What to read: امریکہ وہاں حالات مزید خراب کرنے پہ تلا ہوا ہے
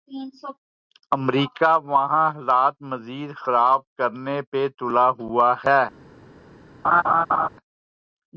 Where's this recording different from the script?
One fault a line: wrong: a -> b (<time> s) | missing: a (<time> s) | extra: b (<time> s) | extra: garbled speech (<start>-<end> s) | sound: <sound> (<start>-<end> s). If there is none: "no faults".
sound: laugh (6.8-7.5 s)